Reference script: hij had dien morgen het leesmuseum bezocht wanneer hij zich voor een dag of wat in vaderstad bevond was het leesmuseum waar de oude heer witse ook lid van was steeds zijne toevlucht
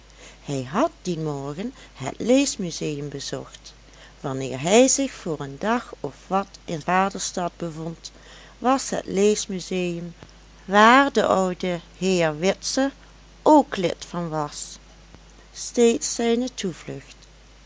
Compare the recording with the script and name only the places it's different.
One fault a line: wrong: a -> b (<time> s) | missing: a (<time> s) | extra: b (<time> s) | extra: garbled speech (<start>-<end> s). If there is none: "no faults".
no faults